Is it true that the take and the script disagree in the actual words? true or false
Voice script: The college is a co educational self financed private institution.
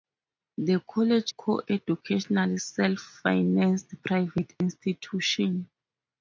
true